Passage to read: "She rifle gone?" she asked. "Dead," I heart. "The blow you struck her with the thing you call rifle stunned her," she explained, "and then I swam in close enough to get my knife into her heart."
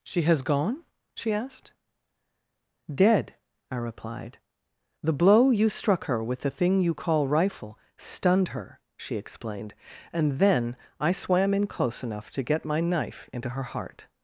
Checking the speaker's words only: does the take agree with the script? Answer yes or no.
no